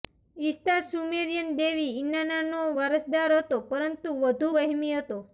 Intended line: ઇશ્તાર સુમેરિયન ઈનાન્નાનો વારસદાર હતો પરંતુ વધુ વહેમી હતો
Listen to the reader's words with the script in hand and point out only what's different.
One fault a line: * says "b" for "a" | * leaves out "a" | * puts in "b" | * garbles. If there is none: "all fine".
* puts in "દેવી"